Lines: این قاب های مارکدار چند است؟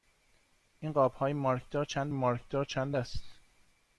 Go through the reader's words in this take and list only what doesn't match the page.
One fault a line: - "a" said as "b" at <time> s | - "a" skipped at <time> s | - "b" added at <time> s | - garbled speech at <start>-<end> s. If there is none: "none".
- "مارکدار چند" added at 2.1 s